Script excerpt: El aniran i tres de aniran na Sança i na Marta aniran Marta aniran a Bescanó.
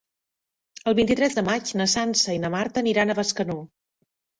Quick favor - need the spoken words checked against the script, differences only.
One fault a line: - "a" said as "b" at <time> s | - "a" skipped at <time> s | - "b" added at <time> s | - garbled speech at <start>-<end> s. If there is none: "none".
- "aniran" said as "vint" at 1.0 s
- "aniran" said as "maig" at 1.5 s
- "Marta aniran" skipped at 3.1 s